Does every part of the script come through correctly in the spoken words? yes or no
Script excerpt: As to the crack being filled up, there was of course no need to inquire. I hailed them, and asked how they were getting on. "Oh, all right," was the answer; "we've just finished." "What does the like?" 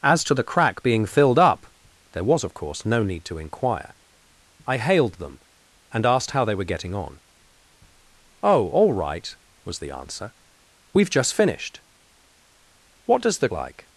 yes